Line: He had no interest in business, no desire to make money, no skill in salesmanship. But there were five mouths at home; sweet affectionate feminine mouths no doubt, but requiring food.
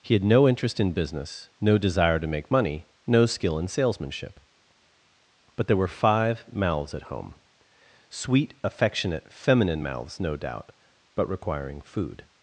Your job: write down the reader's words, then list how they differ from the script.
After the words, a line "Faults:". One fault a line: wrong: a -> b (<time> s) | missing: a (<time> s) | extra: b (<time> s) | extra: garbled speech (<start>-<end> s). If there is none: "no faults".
He had no interest in business, no desire to make money, no skill in salesmanship. But there were five mouths at home; sweet affectionate feminine mouths no doubt, but requiring food.
Faults:
no faults